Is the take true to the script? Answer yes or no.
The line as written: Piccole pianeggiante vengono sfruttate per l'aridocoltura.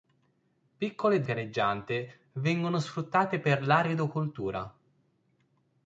yes